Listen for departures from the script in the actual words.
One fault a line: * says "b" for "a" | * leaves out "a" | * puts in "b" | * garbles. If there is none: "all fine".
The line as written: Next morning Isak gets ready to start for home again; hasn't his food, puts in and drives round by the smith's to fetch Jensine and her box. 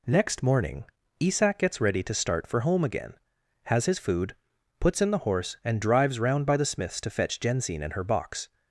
* says "has" for "hasn't"
* puts in "the horse"